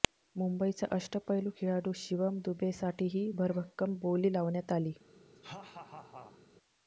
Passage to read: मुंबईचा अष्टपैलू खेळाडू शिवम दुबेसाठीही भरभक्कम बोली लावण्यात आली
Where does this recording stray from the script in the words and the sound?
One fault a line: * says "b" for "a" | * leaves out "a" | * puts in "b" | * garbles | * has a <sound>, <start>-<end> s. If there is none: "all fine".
* has a laugh, 5.4-6.4 s